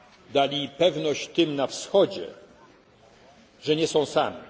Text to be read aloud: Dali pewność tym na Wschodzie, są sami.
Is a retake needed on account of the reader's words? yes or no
yes